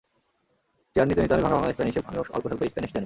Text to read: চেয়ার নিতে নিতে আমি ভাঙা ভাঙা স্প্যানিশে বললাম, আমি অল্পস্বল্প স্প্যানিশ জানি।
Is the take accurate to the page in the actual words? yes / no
no